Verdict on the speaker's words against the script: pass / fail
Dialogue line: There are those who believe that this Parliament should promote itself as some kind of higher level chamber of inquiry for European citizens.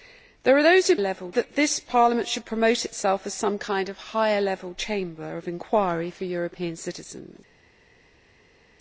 fail